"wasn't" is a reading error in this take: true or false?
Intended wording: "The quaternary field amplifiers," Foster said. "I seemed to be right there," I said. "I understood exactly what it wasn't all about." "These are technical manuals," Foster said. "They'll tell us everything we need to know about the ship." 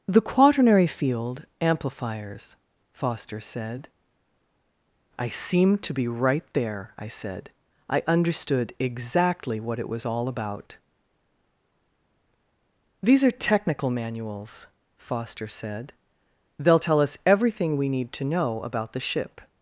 true